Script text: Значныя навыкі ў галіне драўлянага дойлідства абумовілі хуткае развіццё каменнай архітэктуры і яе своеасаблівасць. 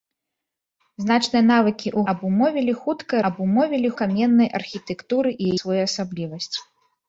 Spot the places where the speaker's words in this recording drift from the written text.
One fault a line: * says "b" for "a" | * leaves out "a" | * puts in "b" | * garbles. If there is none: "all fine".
* leaves out "галіне драўлянага дойлідства"
* says "абумовілі" for "развіццё"
* leaves out "яе"